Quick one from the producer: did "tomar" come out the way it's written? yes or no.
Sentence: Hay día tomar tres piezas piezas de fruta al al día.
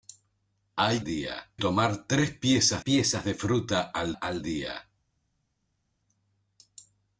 yes